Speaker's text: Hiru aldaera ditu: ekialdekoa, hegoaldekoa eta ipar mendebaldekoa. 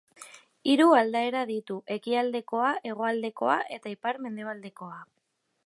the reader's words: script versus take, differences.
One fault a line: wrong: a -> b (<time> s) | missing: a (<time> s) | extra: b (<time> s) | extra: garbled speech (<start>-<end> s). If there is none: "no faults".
no faults